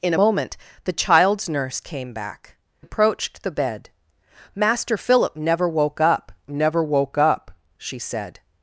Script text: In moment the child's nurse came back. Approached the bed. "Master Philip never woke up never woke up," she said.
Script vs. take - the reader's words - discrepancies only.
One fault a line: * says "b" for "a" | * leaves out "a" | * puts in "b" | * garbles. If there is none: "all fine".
all fine